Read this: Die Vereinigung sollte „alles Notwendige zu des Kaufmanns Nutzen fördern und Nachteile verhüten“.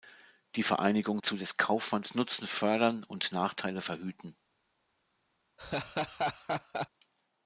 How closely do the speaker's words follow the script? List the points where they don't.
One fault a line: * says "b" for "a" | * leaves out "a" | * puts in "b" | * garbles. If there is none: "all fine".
* leaves out "sollte alles Notwendige"